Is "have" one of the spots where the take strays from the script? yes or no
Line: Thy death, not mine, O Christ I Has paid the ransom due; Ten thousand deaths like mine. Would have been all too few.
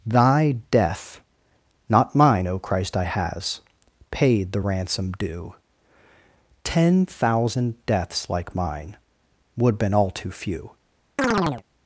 yes